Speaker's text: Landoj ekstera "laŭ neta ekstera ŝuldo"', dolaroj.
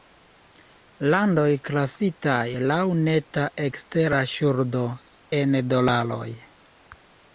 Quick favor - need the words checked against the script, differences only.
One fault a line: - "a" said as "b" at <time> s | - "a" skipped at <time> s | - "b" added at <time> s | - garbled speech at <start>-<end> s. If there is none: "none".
- "ekstera" said as "klasitaj" at 1.7 s
- "en" added at 5.4 s